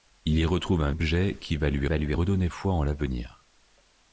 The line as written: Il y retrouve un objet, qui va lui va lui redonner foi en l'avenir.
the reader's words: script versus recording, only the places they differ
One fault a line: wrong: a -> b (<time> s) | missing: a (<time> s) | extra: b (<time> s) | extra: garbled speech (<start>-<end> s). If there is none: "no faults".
no faults